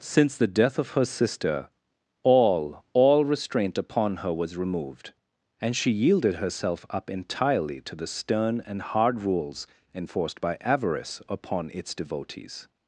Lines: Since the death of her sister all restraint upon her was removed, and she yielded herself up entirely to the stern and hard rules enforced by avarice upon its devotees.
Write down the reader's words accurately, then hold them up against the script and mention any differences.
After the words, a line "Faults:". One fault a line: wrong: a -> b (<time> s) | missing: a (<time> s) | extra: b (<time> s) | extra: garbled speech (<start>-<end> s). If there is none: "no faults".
Since the death of her sister all all restraint upon her was removed, and she yielded herself up entirely to the stern and hard rules enforced by avarice upon its devotees.
Faults:
extra: all (2.9 s)